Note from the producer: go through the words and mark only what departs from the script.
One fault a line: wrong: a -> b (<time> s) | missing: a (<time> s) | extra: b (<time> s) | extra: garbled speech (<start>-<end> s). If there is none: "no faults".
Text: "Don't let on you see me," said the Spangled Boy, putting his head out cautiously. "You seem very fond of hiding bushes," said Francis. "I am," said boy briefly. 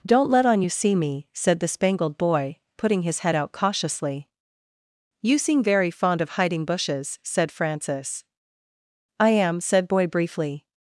no faults